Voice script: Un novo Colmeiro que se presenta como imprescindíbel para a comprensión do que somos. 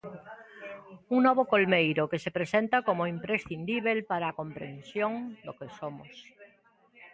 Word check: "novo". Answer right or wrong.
right